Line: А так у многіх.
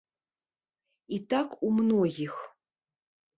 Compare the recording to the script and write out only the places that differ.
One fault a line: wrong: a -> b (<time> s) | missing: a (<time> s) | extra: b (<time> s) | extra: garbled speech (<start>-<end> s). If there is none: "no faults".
wrong: А -> І (1.1 s)